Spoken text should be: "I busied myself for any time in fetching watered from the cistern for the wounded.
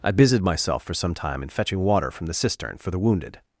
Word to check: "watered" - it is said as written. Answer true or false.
false